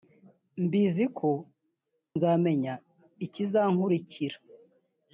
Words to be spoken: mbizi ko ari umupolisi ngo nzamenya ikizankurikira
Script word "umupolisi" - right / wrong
wrong